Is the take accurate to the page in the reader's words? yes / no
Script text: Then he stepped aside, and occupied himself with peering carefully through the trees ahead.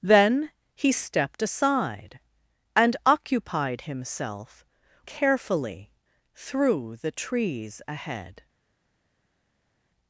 no